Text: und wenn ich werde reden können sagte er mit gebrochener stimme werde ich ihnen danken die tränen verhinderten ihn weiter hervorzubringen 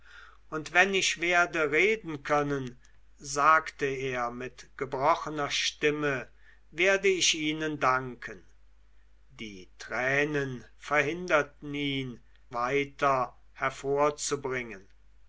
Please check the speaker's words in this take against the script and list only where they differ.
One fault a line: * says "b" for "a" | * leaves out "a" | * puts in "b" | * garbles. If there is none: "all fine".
all fine